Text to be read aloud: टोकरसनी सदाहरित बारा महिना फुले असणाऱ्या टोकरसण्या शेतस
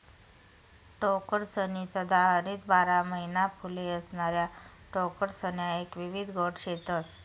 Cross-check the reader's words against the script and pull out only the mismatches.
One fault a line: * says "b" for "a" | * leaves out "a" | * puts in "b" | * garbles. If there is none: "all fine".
* puts in "एक विविध गट"